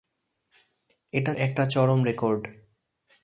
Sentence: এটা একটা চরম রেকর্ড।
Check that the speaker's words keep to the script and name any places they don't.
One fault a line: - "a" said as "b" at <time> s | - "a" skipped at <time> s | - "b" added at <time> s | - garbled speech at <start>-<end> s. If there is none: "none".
none